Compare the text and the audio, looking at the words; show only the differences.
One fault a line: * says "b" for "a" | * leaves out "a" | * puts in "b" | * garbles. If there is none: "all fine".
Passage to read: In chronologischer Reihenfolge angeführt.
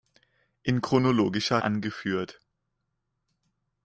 * leaves out "Reihenfolge"